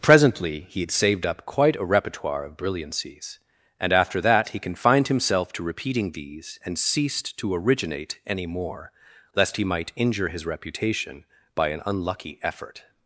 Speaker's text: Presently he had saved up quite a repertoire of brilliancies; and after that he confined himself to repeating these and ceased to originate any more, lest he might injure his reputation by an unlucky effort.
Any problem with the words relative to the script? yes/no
no